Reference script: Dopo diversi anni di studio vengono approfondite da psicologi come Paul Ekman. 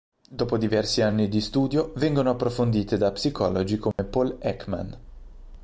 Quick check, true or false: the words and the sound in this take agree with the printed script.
false